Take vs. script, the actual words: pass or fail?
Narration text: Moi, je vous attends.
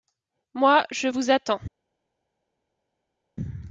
pass